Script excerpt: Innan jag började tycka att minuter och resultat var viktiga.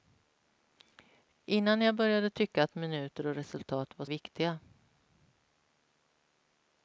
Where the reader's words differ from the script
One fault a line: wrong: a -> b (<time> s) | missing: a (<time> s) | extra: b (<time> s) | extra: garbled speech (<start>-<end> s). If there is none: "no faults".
no faults